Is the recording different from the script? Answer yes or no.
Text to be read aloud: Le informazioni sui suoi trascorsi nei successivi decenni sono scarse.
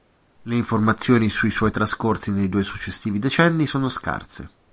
yes